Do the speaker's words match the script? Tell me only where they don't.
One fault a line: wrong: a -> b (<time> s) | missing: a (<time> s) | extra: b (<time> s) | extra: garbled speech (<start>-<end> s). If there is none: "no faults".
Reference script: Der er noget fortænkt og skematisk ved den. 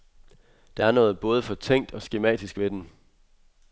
extra: både (1.2 s)